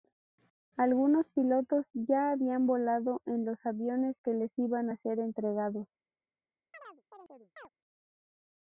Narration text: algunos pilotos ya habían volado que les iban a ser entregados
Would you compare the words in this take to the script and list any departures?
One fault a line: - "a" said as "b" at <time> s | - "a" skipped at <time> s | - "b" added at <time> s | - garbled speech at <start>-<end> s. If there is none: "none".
- "en los aviones" added at 3.3 s